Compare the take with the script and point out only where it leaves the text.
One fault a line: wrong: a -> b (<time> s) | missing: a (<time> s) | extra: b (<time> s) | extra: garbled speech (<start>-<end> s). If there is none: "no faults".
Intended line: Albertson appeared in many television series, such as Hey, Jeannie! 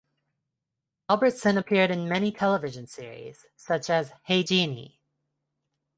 no faults